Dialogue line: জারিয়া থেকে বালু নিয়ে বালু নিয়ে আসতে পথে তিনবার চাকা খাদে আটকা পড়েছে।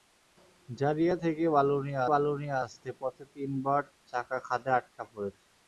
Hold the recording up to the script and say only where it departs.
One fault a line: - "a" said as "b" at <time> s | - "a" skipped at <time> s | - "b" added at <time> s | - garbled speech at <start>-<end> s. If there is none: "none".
none